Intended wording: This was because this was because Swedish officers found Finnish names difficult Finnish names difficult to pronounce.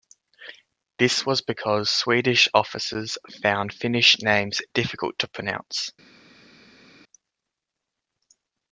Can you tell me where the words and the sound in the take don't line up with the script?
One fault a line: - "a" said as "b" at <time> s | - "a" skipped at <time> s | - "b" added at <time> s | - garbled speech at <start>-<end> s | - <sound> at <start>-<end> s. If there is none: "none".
- "this was because" skipped at 1.9 s
- "Finnish names difficult" skipped at 5.1 s